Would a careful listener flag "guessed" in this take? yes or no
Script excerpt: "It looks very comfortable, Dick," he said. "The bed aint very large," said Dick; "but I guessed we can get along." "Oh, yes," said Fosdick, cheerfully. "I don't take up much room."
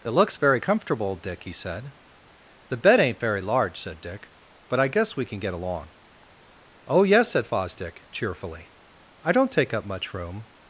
yes